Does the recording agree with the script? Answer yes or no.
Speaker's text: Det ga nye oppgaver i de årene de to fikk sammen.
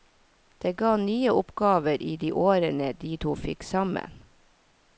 yes